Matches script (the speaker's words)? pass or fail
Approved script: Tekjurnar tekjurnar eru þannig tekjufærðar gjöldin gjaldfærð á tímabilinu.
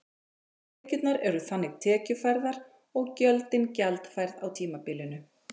fail